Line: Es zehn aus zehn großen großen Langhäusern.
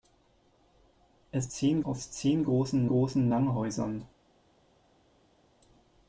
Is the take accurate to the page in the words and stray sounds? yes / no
yes